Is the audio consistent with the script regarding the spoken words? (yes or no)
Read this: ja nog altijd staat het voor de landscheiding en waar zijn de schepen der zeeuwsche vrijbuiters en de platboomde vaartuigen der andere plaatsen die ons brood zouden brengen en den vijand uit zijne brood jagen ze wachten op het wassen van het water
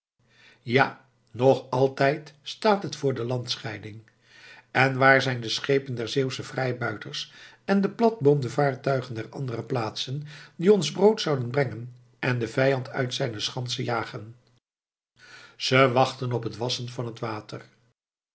no